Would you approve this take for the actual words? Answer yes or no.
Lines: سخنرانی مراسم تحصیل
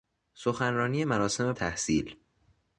yes